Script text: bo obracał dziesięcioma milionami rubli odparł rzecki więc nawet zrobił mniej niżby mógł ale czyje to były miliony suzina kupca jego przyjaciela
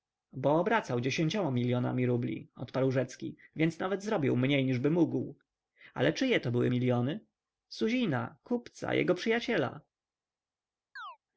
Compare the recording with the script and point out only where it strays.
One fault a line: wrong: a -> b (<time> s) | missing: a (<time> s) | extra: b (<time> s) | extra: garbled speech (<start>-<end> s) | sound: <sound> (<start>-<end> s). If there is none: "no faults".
sound: chirp (11.0-11.2 s)